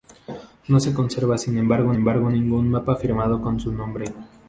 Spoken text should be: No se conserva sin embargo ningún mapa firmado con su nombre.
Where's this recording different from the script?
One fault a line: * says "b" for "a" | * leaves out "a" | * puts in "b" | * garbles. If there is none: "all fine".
* puts in "embargo"